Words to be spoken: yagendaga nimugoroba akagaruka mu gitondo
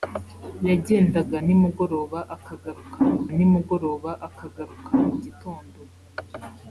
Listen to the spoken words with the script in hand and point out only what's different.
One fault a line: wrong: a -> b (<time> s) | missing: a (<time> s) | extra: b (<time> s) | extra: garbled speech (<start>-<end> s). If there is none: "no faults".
extra: nimugoroba akagaruka mu (3.4 s)